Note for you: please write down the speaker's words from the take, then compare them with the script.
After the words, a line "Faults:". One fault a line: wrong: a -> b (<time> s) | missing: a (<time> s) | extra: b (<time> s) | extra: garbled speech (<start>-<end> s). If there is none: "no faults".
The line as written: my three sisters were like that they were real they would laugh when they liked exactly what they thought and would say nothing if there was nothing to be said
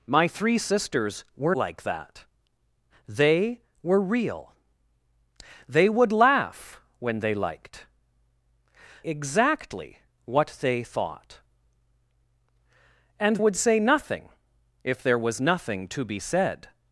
my three sisters were like that they were real they would laugh when they liked exactly what they thought and would say nothing if there was nothing to be said
Faults:
no faults